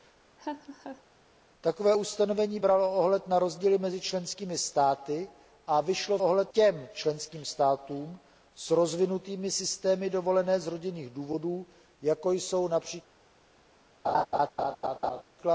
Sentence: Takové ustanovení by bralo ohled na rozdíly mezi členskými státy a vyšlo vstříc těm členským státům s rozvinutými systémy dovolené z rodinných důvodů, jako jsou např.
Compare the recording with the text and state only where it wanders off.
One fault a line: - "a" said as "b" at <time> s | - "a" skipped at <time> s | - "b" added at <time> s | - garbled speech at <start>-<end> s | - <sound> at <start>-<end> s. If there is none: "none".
- laugh at 0.4-1.0 s
- "by" skipped at 2.6 s
- "vstříc" said as "ohled" at 6.2 s
- laugh at 14.0-15.2 s